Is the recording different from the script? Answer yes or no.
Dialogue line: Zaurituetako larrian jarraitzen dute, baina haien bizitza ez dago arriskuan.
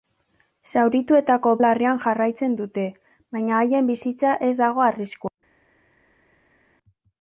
no